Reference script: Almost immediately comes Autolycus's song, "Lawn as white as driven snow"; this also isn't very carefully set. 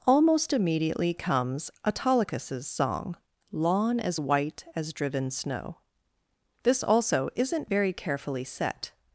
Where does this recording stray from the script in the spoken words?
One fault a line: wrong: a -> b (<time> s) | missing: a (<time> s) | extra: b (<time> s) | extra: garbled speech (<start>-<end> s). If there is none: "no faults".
no faults